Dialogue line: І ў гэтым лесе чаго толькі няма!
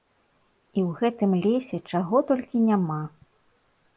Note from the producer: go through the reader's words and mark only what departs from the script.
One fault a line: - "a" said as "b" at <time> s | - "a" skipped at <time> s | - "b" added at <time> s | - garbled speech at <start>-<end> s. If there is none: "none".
none